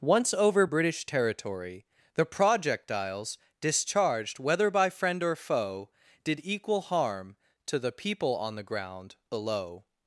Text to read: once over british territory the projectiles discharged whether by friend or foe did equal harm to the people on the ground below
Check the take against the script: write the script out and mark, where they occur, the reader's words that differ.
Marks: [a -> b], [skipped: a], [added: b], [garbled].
once over british territory the projectiles discharged whether by friend or foe did equal harm to the people on the ground below